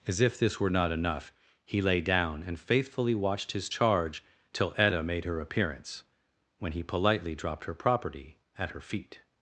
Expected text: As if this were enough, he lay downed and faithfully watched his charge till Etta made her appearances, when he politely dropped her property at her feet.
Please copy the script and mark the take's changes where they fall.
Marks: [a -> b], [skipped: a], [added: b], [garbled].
As if this were [added: not] enough, he lay [downed -> down] and faithfully watched his charge till Etta made her [appearances, -> appearance] when he politely dropped her property at her feet.